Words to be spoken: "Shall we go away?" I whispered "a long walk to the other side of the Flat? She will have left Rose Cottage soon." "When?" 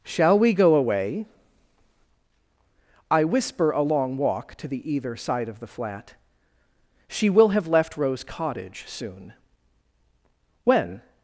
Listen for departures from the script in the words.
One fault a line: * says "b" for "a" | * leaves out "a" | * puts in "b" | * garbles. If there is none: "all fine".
* says "whisper" for "whispered"
* says "either" for "other"